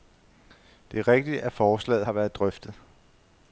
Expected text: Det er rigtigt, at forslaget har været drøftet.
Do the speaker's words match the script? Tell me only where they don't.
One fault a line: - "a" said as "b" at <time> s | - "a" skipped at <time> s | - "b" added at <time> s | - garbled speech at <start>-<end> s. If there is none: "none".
none